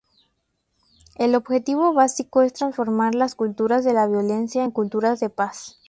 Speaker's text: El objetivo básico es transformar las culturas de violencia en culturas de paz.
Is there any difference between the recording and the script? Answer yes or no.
yes